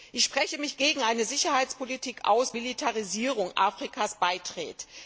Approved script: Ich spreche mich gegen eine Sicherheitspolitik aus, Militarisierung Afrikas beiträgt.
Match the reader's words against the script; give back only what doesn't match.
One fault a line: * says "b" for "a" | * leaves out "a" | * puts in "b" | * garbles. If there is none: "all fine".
all fine